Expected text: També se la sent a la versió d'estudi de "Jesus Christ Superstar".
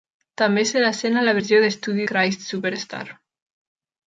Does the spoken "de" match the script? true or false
false